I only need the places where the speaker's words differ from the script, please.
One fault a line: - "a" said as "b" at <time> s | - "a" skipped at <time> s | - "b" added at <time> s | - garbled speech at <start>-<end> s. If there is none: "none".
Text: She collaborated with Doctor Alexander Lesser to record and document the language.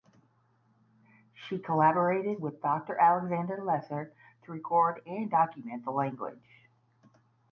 none